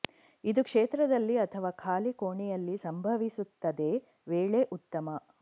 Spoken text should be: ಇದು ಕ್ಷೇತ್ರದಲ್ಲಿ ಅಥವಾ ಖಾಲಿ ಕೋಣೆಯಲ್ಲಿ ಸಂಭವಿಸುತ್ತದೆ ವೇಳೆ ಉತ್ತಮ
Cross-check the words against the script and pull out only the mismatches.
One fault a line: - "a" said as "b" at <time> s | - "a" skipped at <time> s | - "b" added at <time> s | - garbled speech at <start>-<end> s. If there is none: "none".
none